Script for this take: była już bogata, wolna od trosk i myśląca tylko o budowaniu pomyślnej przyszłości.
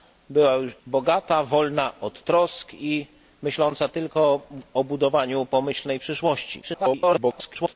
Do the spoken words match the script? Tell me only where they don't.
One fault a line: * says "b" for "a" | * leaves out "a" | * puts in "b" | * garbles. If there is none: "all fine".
* leaves out "już"
* garbles